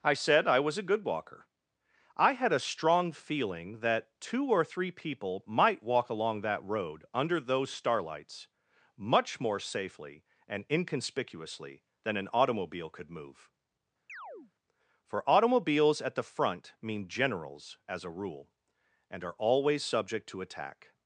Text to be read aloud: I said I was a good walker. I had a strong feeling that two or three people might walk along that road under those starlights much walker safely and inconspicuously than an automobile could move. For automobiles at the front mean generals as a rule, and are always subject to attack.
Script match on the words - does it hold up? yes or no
no